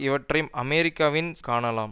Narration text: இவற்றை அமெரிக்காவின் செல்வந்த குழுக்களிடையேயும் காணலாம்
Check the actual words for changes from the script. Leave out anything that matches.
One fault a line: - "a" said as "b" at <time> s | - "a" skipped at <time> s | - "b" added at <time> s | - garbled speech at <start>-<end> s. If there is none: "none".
- "செல்வந்த குழுக்களிடையேயும்" skipped at 1.3 s